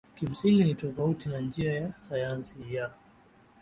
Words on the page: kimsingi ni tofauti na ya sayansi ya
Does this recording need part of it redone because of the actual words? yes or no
yes